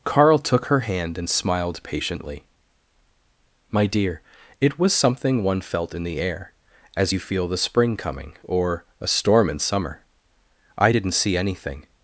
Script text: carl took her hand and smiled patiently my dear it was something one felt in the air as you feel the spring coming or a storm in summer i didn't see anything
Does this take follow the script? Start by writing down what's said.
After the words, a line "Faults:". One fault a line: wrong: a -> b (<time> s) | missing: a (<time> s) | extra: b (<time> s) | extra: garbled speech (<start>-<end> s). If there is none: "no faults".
carl took her hand and smiled patiently my dear it was something one felt in the air as you feel the spring coming or a storm in summer i didn't see anything
Faults:
no faults